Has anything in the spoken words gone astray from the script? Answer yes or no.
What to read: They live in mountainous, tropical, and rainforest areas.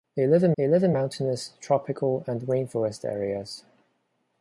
yes